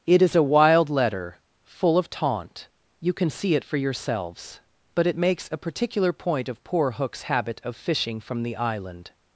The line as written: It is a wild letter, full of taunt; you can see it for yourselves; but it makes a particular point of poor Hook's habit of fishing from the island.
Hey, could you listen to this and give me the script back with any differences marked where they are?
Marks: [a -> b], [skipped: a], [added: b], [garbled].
It is a wild letter, full of taunt; you can see it for yourselves; but it makes a particular point of poor Hook's habit of fishing from the island.